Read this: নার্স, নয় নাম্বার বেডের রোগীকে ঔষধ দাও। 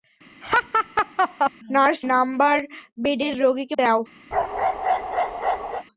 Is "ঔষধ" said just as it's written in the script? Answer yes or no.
no